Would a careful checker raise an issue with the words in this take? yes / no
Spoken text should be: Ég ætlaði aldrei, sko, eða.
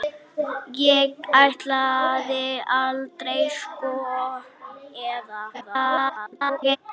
yes